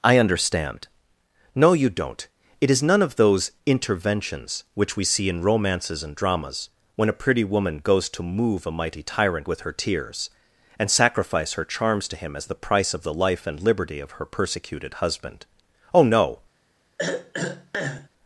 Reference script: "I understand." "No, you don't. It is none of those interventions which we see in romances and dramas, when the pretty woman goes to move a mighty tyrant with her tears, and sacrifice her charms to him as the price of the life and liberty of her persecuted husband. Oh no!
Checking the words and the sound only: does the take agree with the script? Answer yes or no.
no